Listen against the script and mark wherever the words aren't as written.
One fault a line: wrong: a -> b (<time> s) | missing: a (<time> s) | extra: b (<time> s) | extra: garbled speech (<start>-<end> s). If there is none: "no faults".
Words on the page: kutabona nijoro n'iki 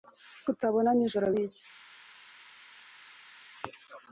no faults